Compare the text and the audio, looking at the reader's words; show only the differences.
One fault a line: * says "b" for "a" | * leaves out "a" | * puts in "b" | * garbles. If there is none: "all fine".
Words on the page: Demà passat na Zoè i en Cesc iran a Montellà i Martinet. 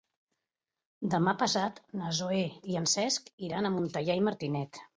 all fine